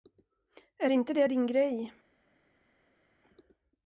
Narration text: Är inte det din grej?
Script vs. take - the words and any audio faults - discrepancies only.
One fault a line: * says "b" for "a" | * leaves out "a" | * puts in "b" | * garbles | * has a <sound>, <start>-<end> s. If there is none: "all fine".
all fine